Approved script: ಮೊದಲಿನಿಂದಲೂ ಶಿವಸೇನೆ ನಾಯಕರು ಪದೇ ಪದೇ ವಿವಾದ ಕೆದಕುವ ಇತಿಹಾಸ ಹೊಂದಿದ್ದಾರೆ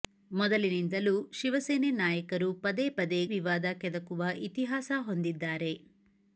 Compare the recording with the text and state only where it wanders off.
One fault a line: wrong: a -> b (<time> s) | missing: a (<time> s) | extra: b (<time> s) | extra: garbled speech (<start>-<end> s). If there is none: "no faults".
no faults